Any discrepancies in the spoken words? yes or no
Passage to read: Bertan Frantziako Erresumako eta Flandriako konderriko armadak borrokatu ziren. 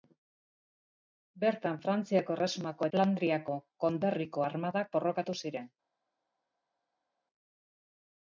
yes